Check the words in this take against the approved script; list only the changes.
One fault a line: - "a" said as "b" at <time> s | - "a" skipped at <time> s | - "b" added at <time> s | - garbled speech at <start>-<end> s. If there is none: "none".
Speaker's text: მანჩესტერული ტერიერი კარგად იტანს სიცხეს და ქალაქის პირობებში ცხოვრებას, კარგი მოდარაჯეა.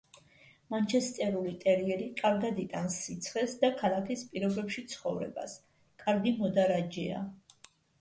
none